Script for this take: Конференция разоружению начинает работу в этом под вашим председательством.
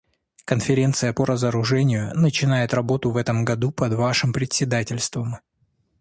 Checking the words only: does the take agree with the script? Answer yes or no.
no